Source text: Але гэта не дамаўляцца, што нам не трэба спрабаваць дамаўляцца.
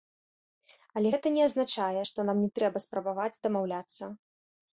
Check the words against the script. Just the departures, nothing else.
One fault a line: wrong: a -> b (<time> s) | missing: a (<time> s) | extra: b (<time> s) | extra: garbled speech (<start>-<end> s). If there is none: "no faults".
wrong: дамаўляцца -> азначае (1.5 s)